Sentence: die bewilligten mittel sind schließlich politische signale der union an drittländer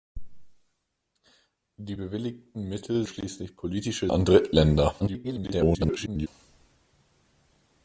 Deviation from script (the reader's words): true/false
true